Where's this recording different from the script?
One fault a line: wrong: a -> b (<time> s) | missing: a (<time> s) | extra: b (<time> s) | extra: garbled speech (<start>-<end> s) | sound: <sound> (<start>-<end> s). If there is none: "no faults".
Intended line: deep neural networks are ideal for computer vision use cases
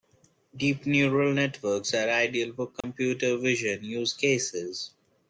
sound: dropout (2.8-2.8 s)